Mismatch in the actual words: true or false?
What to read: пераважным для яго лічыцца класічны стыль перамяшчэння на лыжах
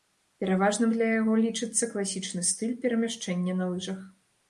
false